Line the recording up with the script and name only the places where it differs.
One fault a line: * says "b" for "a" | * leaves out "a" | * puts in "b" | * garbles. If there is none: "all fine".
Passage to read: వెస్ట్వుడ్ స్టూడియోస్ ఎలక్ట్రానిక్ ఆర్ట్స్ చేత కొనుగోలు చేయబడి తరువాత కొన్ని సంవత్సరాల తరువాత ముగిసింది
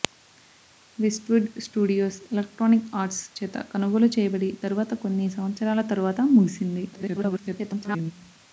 * garbles